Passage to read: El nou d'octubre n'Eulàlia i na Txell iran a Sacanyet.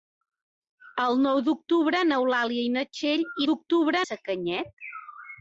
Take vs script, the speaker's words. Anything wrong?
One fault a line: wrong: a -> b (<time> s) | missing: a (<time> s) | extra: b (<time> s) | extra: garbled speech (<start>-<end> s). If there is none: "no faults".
wrong: iran -> d'octubre (3.5 s)